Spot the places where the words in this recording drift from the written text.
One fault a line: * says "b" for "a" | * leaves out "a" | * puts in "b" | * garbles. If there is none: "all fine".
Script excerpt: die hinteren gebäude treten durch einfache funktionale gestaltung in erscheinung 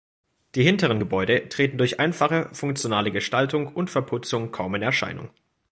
* puts in "und verputzung kaum"